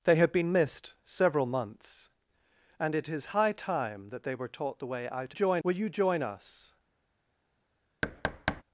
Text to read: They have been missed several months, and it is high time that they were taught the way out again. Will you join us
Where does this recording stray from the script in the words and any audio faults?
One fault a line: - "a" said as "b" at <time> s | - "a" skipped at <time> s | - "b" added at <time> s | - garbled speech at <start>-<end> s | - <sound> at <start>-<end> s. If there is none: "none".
- "again" said as "join" at 5.3 s
- thud at 8.0-8.6 s